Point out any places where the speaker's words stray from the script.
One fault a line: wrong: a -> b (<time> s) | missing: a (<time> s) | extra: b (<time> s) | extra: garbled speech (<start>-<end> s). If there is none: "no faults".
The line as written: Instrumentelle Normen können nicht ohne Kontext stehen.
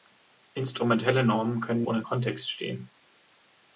missing: nicht (1.8 s)